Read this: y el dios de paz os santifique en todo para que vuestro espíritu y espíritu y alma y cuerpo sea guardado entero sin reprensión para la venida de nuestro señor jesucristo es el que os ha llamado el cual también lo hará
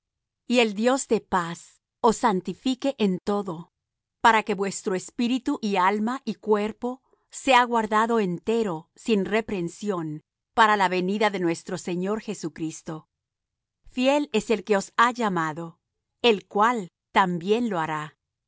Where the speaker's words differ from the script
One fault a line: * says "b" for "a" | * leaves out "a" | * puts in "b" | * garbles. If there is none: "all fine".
* leaves out "espíritu y"
* puts in "fiel"